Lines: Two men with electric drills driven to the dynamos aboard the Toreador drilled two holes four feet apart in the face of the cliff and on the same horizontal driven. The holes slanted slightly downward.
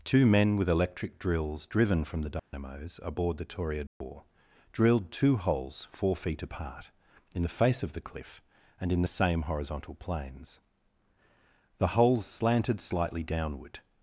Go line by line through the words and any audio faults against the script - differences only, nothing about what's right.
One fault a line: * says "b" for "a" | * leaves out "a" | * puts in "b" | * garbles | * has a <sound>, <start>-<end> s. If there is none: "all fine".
* says "from" for "to"
* has a dropout, 2.4-2.5 s
* has a dropout, 3.9-4.0 s
* says "in" for "on"
* says "planes" for "driven"